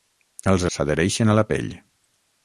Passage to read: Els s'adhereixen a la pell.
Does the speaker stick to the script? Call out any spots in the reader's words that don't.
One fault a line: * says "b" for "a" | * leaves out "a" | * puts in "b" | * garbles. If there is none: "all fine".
all fine